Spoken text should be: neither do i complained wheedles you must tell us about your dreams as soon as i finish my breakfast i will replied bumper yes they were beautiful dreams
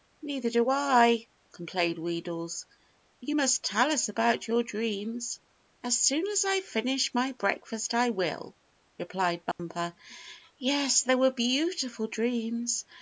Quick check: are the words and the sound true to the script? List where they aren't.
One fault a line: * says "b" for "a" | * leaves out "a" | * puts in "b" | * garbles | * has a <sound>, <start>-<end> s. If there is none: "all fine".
* has a dropout, 9.5-9.6 s